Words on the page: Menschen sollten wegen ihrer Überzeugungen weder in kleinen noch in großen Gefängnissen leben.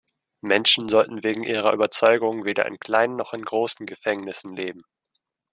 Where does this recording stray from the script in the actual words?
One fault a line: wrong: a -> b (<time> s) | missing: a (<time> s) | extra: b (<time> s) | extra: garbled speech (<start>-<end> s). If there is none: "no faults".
no faults